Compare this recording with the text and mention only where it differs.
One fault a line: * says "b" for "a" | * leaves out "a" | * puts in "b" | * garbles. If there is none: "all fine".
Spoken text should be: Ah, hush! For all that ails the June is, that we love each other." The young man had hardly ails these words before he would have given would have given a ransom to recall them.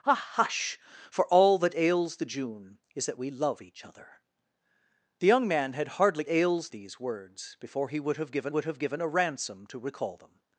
all fine